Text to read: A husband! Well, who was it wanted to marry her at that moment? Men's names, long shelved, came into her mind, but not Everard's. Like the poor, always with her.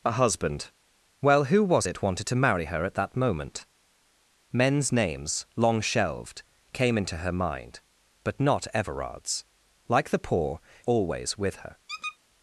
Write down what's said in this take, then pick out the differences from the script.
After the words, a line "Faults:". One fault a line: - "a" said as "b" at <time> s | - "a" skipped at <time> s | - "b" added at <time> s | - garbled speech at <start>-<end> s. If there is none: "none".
A husband! Well, who was it wanted to marry her at that moment? Men's names, long shelved, came into her mind, but not Everard's. Like the poor, always with her.
Faults:
none